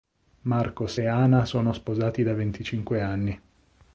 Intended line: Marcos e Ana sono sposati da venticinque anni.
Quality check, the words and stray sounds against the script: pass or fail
pass